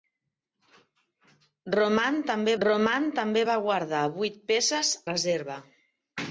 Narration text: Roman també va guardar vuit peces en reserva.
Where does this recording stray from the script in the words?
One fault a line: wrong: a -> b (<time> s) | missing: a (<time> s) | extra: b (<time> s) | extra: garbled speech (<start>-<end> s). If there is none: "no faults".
extra: roman també (2.6 s)
missing: en (4.9 s)